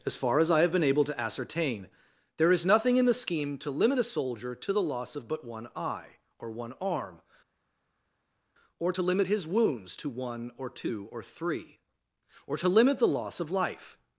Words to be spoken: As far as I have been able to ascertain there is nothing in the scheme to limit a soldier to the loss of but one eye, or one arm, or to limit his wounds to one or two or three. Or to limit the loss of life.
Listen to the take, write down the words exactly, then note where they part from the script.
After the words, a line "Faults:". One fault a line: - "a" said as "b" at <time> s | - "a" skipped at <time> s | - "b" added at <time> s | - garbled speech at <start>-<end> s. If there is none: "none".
As far as I have been able to ascertain there is nothing in the scheme to limit a soldier to the loss of but one eye, or one arm, or to limit his wounds to one or two or three. Or to limit the loss of life.
Faults:
none